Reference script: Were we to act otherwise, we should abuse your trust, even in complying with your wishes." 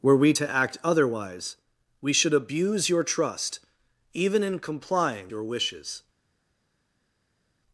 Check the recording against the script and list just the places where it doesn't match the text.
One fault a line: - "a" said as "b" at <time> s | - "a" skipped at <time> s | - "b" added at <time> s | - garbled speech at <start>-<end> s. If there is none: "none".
- "with" skipped at 5.3 s